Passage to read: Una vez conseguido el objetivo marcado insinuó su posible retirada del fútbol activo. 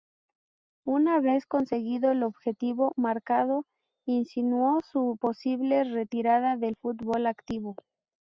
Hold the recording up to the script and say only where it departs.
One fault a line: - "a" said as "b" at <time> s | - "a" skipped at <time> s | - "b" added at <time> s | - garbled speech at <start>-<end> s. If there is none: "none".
none